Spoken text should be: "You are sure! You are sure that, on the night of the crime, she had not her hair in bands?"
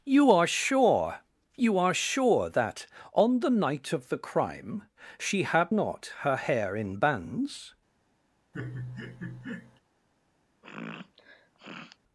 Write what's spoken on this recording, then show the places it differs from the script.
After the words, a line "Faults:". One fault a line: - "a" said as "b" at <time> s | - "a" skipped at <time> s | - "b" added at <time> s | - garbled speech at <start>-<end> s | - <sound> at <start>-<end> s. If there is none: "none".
"You are sure! You are sure that, on the night of the crime, she had not her hair in bands?"
Faults:
- laugh at 8.5-9.8 s
- sniff at 10.6-12.0 s